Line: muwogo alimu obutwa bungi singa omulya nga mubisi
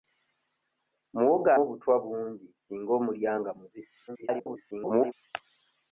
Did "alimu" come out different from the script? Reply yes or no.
yes